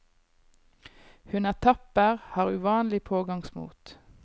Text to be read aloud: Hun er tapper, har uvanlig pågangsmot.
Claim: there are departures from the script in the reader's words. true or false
false